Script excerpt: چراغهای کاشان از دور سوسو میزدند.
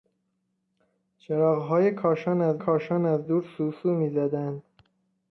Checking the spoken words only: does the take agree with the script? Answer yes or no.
no